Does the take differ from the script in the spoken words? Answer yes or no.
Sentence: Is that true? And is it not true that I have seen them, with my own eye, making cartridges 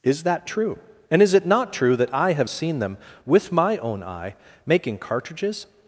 no